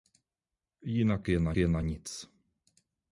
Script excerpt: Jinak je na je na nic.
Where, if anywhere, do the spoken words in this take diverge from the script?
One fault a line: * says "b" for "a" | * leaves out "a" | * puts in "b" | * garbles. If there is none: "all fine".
all fine